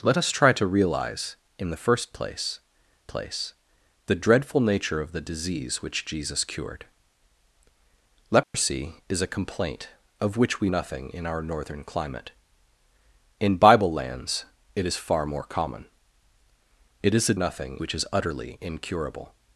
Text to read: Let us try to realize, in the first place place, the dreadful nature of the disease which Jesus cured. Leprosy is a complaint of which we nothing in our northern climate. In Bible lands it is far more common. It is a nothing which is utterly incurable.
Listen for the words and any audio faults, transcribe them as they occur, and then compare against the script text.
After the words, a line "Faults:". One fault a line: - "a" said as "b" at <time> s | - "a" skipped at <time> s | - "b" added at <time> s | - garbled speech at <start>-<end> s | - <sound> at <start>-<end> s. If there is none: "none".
Let us try to realize, in the first place place, the dreadful nature of the disease which Jesus cured. Leprosy is a complaint of which we nothing in our northern climate. In Bible lands it is far more common. It is a nothing which is utterly incurable.
Faults:
- dropout at 8.4-8.5 s